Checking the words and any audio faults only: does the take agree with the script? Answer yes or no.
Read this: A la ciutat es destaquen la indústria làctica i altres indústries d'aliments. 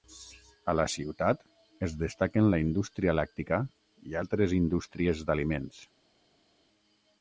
yes